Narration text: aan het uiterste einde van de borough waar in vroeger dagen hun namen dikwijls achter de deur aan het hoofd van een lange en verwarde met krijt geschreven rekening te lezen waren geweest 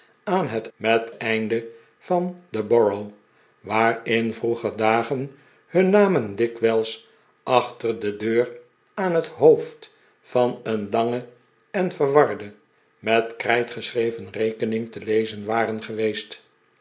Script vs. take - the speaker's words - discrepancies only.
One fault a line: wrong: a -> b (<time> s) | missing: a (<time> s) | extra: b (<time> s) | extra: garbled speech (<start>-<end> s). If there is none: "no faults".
wrong: uiterste -> met (0.8 s)